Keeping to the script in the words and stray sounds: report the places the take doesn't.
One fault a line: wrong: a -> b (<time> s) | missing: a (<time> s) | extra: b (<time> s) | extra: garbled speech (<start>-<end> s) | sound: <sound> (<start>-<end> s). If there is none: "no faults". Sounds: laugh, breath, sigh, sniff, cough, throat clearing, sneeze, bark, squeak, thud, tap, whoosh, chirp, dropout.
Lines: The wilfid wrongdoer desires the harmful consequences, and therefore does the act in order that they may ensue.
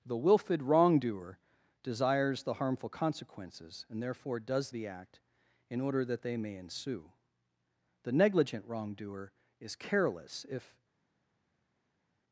extra: The negligent wrongdoer is careless if (8.0 s)